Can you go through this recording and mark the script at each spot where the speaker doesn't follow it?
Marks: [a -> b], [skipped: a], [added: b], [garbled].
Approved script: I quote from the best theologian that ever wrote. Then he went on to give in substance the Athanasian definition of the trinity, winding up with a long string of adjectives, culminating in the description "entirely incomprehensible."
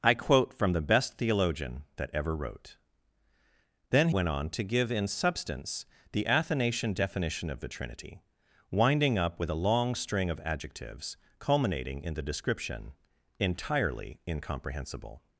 I quote from the best theologian that ever wrote. Then [skipped: he] went on to give in substance the Athanasian definition of the trinity, winding up with a long string of adjectives, culminating in the description "entirely incomprehensible."